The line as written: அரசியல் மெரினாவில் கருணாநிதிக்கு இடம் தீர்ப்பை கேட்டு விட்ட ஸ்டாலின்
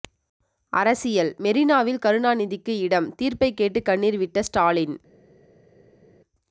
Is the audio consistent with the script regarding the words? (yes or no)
no